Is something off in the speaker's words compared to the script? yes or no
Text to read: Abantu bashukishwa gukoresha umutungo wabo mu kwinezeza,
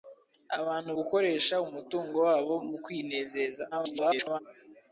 yes